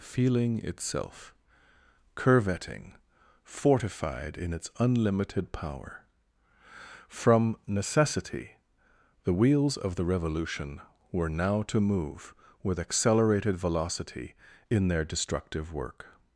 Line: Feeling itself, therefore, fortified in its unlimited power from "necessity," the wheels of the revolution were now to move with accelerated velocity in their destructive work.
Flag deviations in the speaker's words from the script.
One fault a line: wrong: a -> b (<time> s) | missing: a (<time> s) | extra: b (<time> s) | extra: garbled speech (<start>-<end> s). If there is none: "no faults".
wrong: therefore -> curvetting (2.2 s)